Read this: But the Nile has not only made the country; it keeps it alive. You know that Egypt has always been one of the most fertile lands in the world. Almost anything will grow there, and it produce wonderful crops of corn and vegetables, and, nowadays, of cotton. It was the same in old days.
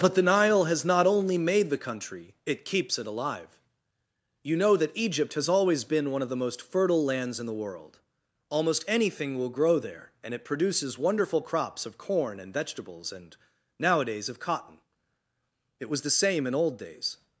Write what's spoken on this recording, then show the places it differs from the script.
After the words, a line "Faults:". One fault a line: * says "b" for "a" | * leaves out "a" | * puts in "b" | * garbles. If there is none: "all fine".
But the Nile has not only made the country; it keeps it alive. You know that Egypt has always been one of the most fertile lands in the world. Almost anything will grow there, and it produces wonderful crops of corn and vegetables, and, nowadays, of cotton. It was the same in old days.
Faults:
* says "produces" for "produce"